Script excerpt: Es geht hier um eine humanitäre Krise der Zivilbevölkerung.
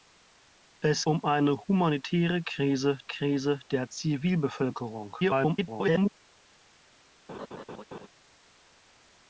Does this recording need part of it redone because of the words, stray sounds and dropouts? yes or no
yes